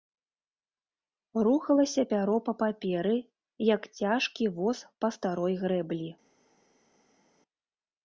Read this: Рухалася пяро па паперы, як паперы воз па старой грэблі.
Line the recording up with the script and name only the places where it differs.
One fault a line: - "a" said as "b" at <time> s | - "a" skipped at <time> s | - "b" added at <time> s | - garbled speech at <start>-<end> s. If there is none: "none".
- "паперы" said as "цяжкі" at 4.0 s